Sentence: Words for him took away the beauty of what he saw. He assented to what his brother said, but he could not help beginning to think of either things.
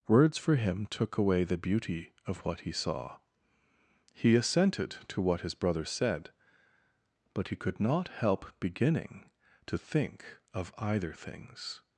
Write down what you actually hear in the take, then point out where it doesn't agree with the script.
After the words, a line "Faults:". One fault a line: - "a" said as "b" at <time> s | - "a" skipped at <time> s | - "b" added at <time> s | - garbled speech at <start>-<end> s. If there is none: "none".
Words for him took away the beauty of what he saw. He assented to what his brother said, but he could not help beginning to think of either things.
Faults:
none